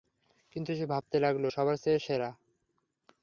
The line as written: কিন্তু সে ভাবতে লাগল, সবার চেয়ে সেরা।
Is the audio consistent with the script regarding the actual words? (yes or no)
yes